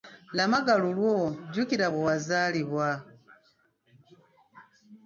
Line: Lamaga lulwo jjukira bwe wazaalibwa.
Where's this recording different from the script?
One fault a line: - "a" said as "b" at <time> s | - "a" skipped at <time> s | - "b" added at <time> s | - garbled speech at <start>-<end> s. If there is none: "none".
none